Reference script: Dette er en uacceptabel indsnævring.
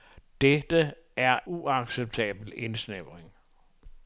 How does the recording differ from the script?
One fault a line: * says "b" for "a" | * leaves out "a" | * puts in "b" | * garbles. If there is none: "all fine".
* leaves out "en"